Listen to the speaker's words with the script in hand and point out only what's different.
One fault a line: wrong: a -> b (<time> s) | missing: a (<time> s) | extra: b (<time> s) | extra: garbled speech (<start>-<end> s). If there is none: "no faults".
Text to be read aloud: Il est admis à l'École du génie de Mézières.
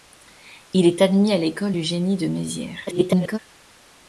extra: garbled speech (2.9-3.4 s)